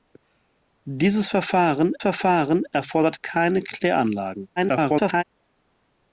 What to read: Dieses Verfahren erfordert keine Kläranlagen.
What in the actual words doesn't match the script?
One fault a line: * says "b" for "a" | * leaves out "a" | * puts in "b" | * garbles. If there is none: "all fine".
* puts in "Verfahren"
* garbles